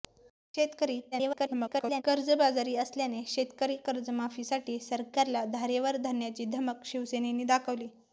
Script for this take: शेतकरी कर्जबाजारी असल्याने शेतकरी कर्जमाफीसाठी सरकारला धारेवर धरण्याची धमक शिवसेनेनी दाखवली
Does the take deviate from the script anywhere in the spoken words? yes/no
yes